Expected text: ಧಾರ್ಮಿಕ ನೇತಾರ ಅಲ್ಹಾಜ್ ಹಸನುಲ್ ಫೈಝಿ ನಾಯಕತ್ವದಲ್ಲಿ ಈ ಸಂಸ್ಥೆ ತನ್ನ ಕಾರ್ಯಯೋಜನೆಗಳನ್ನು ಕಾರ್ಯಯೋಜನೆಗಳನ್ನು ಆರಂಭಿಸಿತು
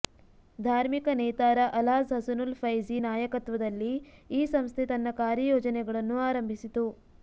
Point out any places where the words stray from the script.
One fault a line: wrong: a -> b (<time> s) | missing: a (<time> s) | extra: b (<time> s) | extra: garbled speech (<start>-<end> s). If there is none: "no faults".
missing: ಕಾರ್ಯಯೋಜನೆಗಳನ್ನು (6.2 s)